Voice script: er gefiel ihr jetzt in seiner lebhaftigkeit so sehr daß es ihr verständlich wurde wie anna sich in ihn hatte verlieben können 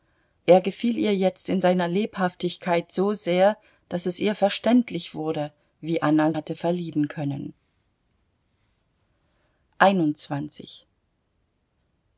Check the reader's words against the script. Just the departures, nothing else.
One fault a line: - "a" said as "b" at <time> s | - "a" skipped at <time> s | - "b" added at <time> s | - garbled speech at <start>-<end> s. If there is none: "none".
- "sich in ihn" skipped at 6.3 s